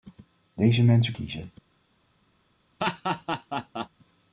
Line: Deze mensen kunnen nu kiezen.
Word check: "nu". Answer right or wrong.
wrong